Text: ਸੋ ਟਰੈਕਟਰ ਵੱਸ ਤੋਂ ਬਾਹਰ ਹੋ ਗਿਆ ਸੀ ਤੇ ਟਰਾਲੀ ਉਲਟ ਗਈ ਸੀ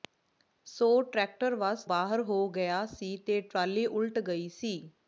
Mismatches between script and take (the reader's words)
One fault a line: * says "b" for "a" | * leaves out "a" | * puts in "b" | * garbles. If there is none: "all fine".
* leaves out "ਤੋਂ"